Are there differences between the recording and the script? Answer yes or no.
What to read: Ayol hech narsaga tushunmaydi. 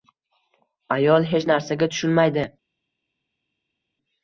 no